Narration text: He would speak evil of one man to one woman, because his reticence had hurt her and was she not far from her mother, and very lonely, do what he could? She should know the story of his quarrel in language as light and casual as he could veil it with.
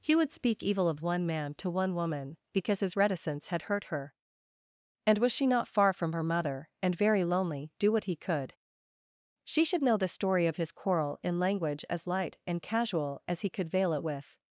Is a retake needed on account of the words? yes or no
no